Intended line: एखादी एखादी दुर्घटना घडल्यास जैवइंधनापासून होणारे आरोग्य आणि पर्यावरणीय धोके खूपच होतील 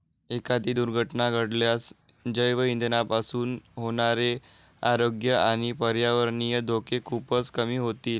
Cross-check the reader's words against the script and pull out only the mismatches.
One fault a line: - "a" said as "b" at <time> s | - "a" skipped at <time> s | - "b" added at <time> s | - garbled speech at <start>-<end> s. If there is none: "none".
- "एखादी" skipped at 0.7 s
- "कमी" added at 7.5 s